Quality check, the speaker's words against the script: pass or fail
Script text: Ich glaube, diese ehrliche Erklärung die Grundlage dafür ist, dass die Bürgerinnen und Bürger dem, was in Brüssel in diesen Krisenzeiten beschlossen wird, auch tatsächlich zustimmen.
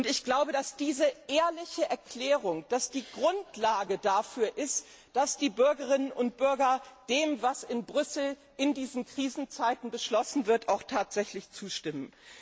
fail